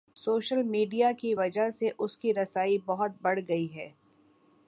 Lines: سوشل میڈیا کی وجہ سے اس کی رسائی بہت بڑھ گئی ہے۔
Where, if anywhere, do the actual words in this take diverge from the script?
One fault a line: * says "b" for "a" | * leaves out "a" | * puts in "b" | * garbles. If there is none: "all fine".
all fine